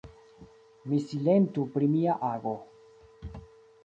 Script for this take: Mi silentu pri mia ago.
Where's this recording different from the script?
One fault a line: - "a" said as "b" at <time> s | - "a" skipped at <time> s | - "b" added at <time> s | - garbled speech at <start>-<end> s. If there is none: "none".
none